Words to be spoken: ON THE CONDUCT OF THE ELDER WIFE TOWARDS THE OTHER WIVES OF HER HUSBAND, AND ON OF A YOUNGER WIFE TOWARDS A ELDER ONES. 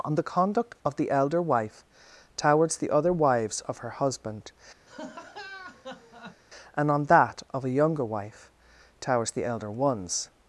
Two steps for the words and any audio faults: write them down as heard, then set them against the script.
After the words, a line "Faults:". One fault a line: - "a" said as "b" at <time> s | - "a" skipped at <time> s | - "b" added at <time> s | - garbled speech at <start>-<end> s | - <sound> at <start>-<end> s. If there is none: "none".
ON THE CONDUCT OF THE ELDER WIFE TOWARDS THE OTHER WIVES OF HER HUSBAND, AND ON THAT OF A YOUNGER WIFE TOWARDS THE ELDER ONES.
Faults:
- laugh at 4.9-6.4 s
- "THAT" added at 7.1 s
- "A" said as "THE" at 9.3 s